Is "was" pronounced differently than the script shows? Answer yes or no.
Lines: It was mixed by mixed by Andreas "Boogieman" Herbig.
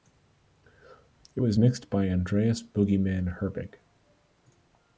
no